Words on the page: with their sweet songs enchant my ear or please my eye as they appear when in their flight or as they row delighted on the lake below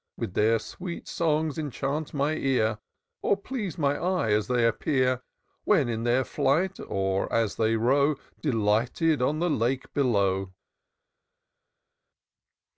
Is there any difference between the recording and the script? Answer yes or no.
no